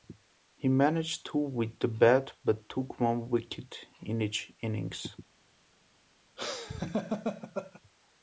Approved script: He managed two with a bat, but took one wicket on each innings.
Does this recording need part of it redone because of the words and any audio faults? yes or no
yes